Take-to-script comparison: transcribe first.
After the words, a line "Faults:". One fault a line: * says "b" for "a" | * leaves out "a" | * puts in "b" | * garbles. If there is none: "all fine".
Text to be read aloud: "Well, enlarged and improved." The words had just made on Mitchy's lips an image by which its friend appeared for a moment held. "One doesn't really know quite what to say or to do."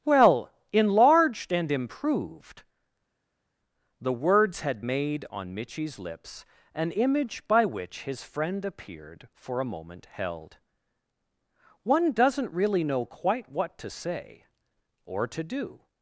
"Well, enlarged and improved." The words had made on Mitchy's lips an image by which his friend appeared for a moment held. "One doesn't really know quite what to say or to do."
Faults:
* leaves out "just"
* says "his" for "its"